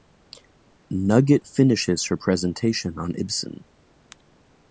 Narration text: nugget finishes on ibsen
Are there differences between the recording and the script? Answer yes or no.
yes